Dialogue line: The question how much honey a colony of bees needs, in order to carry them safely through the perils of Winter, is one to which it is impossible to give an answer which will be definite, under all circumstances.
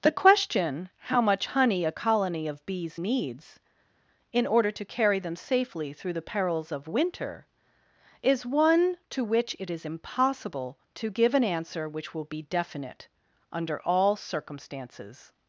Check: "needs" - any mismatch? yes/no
no